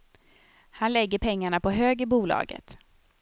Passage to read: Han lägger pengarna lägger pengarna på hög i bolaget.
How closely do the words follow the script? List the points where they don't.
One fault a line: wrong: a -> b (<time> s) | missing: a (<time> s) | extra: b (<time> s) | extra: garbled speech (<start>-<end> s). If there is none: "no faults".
missing: lägger pengarna (1.6 s)